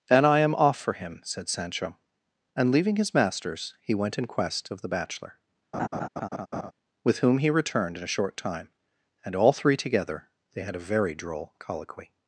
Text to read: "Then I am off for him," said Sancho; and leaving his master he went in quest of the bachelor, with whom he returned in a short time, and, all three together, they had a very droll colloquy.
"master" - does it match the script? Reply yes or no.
no